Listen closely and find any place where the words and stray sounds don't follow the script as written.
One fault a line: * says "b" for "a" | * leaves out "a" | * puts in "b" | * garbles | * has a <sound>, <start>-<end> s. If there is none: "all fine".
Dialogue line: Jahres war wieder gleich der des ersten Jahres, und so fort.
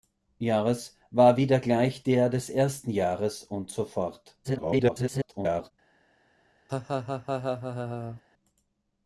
* garbles
* has a laugh, 6.7-8.2 s